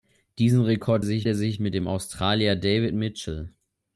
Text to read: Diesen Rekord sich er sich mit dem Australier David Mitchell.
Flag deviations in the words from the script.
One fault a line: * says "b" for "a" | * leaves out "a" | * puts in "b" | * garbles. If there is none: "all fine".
all fine